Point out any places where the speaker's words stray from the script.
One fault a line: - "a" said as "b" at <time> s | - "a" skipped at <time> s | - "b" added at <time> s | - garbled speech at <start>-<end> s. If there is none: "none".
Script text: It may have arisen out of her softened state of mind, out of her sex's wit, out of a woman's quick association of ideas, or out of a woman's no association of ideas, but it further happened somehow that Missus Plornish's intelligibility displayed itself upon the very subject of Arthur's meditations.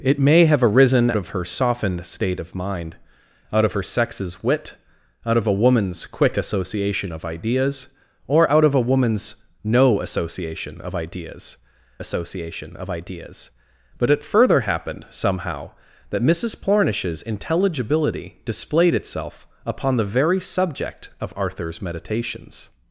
- "out" skipped at 1.1 s
- "association of ideas" added at 12.0 s